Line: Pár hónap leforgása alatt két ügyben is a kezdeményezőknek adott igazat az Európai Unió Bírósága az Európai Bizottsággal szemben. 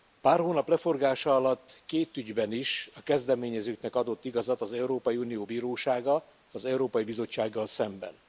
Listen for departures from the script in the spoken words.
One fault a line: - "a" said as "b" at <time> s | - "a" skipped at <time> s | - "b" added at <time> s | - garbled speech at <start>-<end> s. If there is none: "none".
none